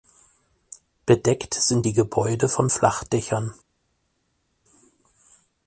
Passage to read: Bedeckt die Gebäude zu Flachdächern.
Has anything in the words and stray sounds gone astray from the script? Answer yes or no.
yes